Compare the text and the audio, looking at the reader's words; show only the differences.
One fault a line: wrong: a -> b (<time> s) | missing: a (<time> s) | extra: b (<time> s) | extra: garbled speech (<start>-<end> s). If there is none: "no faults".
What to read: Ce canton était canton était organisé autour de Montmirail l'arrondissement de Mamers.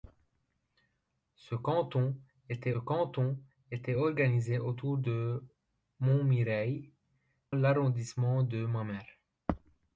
no faults